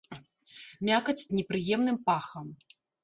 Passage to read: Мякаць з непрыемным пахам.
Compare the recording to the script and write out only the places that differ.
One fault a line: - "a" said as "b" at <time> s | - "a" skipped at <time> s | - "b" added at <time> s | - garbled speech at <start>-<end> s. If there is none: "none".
none